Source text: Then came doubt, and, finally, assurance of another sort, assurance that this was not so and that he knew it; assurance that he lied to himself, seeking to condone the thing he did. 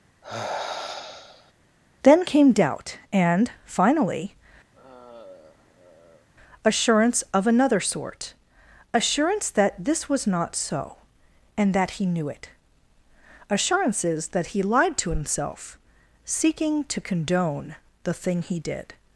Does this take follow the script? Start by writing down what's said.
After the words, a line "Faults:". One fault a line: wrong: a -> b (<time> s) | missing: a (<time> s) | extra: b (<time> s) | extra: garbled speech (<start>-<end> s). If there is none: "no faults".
Then came doubt, and, finally, assurance of another sort, assurance that this was not so and that he knew it; assurances that he lied to himself, seeking to condone the thing he did.
Faults:
wrong: assurance -> assurances (13.5 s)